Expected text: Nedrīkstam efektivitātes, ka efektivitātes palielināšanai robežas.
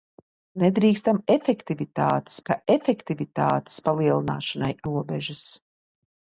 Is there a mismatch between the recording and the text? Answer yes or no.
no